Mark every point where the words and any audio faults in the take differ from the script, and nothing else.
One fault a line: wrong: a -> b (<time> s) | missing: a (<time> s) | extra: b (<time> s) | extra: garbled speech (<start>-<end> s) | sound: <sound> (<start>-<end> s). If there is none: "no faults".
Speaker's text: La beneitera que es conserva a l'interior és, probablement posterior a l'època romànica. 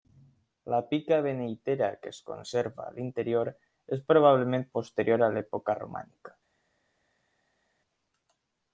extra: pica (0.9 s)